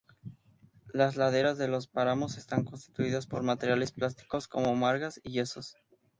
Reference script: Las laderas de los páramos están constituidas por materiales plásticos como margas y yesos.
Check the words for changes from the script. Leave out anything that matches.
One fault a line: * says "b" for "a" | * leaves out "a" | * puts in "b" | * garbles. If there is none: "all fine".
all fine